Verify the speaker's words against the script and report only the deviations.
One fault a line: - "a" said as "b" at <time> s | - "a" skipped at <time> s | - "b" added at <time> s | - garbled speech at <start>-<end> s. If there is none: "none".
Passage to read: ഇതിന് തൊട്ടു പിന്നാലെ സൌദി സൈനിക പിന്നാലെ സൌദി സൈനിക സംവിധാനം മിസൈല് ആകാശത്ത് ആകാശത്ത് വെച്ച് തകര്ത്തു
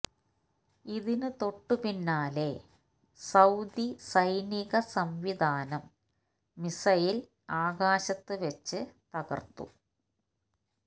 - "പിന്നാലെ സൌദി സൈനിക" skipped at 4.8 s
- "ആകാശത്ത്" skipped at 8.4 s